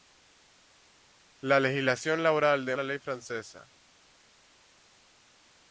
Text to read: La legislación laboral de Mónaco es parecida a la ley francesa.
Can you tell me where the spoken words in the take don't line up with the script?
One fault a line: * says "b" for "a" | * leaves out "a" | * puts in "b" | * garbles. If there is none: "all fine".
* leaves out "Mónaco es parecida"